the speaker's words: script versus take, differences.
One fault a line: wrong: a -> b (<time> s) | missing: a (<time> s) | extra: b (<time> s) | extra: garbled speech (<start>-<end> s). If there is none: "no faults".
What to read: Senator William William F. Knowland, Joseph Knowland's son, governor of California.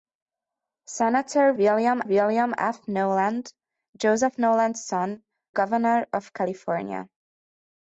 no faults